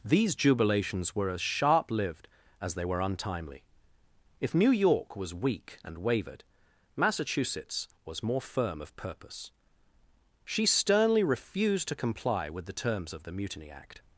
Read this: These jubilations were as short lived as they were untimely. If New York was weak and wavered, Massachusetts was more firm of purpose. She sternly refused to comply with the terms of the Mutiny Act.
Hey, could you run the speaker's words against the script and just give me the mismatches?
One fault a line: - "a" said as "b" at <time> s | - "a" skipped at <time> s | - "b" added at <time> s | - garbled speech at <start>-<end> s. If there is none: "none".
- "short" said as "sharp" at 1.4 s